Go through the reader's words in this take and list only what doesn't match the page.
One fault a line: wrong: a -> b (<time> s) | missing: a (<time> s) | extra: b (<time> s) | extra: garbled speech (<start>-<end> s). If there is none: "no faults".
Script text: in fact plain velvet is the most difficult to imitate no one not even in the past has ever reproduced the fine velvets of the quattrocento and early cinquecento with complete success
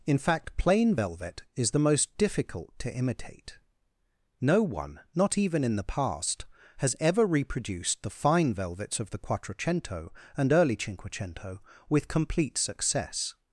no faults